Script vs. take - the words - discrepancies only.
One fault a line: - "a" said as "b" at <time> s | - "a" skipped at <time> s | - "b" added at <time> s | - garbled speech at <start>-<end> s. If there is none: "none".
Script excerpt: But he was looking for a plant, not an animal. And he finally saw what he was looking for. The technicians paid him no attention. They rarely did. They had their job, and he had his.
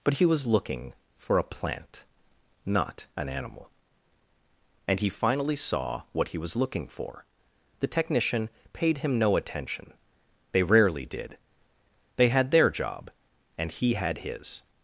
- "technicians" said as "technician" at 7.9 s